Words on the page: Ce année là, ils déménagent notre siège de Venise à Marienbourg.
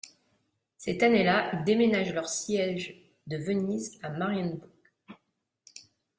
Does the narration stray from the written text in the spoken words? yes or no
yes